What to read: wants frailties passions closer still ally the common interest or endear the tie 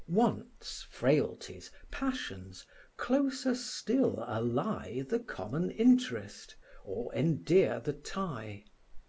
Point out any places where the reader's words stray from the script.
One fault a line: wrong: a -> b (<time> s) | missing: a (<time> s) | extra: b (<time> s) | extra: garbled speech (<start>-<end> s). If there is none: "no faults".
no faults